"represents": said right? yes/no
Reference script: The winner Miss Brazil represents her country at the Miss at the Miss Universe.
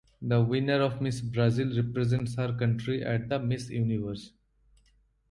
yes